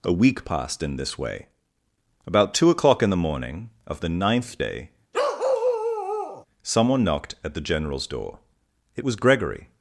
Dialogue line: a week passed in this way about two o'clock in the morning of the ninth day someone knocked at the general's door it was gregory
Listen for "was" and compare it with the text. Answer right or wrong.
right